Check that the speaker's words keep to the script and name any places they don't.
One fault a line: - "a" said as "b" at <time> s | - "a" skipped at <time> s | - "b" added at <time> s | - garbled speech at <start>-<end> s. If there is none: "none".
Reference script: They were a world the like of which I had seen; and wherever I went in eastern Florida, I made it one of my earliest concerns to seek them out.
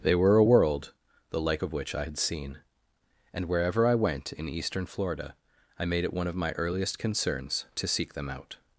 none